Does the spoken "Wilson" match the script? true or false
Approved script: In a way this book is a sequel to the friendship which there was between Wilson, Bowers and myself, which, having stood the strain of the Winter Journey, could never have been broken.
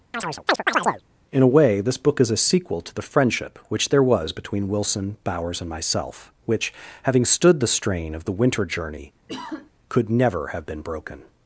true